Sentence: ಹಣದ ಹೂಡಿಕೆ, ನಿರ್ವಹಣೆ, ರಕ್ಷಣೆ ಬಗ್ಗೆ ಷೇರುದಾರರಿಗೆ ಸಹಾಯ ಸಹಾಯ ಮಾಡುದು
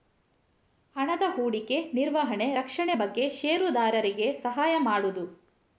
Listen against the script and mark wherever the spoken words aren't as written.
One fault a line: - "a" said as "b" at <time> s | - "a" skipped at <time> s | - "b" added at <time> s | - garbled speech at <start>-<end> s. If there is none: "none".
- "ಸಹಾಯ" skipped at 4.7 s